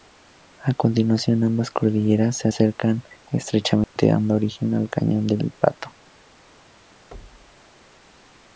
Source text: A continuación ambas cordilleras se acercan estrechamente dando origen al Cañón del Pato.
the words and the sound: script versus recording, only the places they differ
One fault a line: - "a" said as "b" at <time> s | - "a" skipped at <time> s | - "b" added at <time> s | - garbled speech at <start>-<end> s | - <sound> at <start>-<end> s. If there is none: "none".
- dropout at 3.8-4.0 s
- thud at 7.1-7.7 s